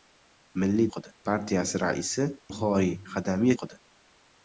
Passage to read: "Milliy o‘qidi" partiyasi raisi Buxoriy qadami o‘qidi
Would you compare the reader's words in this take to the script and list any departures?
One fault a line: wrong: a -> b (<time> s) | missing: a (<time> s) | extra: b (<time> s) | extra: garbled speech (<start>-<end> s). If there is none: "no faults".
no faults